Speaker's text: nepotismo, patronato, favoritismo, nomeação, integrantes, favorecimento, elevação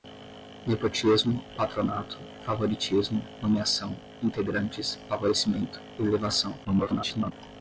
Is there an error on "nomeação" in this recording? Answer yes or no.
no